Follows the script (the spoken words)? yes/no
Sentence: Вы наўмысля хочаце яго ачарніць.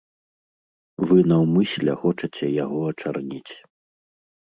yes